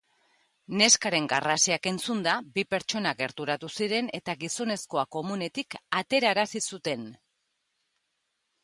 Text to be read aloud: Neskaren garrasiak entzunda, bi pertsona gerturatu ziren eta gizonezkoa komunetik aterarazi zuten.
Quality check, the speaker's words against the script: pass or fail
pass